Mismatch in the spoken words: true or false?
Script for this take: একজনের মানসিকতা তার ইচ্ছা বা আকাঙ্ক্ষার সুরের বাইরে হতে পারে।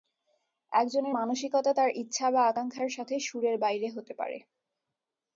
true